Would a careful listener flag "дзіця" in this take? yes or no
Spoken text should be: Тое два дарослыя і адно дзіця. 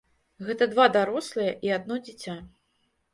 no